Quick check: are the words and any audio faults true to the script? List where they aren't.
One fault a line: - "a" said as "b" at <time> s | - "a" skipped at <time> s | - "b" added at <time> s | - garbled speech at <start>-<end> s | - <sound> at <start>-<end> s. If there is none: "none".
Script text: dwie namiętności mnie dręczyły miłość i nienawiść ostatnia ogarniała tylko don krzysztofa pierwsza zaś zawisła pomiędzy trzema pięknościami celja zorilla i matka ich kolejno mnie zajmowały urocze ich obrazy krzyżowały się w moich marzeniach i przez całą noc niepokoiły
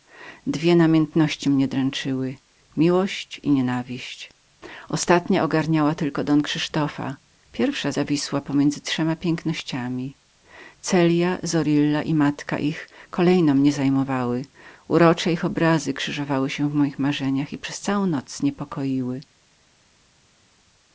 - "zaś" skipped at 7.9 s